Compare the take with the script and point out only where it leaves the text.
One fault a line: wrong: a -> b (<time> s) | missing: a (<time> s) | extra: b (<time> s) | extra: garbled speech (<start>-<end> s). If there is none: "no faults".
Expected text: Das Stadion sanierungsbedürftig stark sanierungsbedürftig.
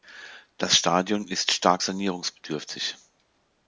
wrong: sanierungsbedürftig -> ist (1.3 s)